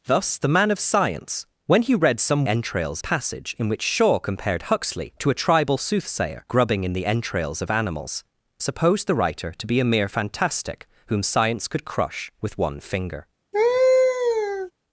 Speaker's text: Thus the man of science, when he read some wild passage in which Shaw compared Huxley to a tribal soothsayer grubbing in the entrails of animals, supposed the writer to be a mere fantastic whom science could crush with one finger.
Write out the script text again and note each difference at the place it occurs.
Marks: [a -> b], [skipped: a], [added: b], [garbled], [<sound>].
Thus the man of science, when he read some [wild -> entrails] passage in which Shaw compared Huxley to a tribal soothsayer grubbing in the entrails of animals, supposed the writer to be a mere fantastic whom science could crush with one finger. [laugh]